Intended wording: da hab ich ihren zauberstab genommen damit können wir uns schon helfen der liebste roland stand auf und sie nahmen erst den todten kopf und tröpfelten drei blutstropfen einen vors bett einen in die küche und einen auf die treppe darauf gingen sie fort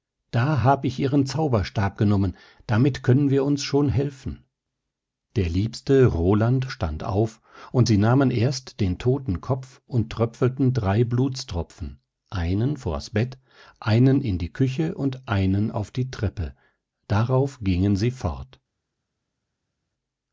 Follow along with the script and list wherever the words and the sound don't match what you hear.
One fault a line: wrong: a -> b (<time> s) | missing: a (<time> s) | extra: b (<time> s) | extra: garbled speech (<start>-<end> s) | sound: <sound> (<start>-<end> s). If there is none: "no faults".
no faults